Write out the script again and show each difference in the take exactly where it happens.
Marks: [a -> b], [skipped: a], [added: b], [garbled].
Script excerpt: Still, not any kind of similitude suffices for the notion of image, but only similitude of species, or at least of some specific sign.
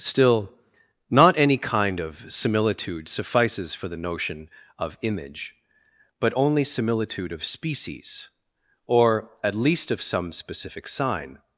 Still, not any kind of similitude suffices for the notion of image, but only similitude of species, or at least of some specific sign.